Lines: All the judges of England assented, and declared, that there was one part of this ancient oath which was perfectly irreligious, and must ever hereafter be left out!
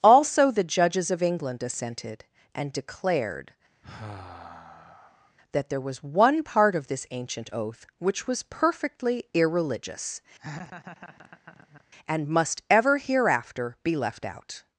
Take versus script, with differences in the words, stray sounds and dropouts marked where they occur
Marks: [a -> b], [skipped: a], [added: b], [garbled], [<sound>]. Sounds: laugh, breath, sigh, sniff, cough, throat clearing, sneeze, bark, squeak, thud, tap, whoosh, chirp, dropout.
[All -> Also] the judges of England assented, and declared, [sigh] that there was one part of this ancient oath which was perfectly irreligious, [laugh] and must ever hereafter be left out!